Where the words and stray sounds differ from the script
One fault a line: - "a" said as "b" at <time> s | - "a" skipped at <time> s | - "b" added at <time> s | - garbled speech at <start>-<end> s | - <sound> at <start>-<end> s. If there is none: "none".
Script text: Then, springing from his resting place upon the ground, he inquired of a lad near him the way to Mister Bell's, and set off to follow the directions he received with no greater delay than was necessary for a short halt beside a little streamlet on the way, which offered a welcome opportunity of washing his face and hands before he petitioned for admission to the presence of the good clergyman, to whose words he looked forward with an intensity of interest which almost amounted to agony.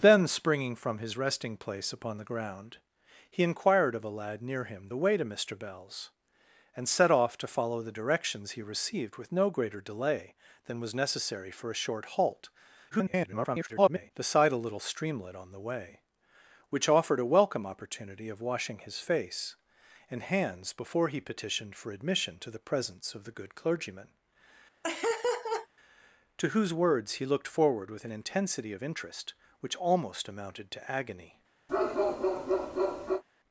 - garbled speech at 12.9-14.1 s
- laugh at 24.8-25.7 s
- bark at 31.7-33.2 s